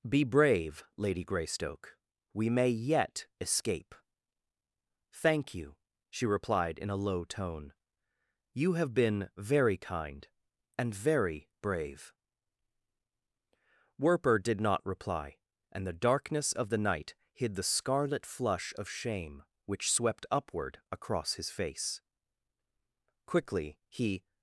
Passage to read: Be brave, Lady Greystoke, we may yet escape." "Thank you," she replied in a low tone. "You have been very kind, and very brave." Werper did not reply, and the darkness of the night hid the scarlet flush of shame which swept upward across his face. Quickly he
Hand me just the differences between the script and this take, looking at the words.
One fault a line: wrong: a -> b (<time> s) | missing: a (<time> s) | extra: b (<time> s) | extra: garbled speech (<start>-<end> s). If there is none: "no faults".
no faults